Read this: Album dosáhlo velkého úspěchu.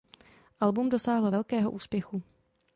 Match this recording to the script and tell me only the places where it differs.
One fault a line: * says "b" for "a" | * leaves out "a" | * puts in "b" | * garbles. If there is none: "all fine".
all fine